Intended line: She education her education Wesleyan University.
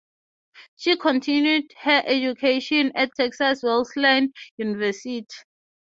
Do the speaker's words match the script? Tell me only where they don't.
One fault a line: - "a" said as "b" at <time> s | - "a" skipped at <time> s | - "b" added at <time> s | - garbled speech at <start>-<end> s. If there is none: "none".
- "education" said as "continued" at 1.0 s
- "at Texas" added at 3.0 s